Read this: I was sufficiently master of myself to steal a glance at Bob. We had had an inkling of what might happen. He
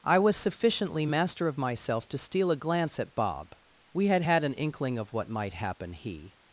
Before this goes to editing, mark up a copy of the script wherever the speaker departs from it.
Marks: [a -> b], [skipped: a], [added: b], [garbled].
I was sufficiently master of myself to steal a glance at Bob. We had had an inkling of what might happen. He